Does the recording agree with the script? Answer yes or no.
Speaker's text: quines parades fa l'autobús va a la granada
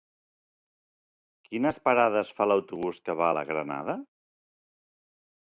no